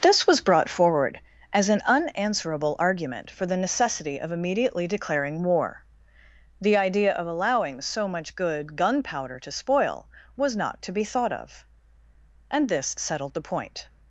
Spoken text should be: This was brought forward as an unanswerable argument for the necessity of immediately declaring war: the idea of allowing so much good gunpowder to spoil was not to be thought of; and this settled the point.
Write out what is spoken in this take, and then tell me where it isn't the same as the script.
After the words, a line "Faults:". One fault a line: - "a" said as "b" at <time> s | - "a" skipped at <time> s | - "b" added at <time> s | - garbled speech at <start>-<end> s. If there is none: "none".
This was brought forward as an unanswerable argument for the necessity of immediately declaring war: the idea of allowing so much good gunpowder to spoil was not to be thought of; and this settled the point.
Faults:
none